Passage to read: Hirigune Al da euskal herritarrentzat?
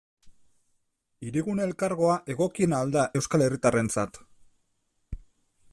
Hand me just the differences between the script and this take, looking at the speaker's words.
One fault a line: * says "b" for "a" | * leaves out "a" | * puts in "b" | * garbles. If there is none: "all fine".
* puts in "Elkargoa egokiena"